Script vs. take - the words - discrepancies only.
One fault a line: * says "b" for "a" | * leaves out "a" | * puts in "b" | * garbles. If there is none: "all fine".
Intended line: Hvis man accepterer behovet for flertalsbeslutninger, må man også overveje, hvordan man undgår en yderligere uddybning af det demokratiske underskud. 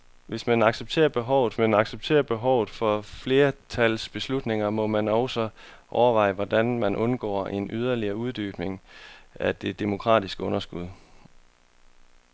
* puts in "man accepterer behovet"